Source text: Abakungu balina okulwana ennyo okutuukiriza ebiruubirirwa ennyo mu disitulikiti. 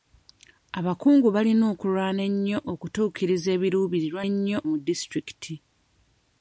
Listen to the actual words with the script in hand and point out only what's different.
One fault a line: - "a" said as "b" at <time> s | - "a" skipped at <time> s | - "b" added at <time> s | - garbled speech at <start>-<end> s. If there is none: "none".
none